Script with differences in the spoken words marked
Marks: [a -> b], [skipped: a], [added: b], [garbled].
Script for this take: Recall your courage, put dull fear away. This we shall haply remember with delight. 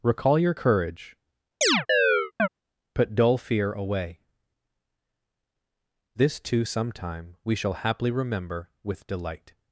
Recall your courage, put dull fear away. This [added: too sometime] we shall haply remember with delight.